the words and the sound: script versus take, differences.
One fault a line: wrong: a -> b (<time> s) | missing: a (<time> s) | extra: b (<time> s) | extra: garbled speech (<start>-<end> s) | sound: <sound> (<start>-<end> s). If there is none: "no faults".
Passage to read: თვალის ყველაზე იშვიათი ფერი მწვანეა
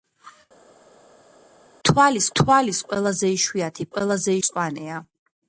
extra: თვალის (2.4 s)
wrong: ფერი -> ყველაზე (4.0 s)